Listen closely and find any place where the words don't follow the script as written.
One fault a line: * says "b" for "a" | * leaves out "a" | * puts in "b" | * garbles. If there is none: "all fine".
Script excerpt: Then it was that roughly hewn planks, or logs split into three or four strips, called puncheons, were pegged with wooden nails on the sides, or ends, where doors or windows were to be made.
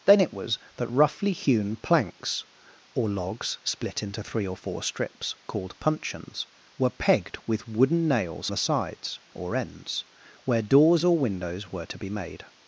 * leaves out "on"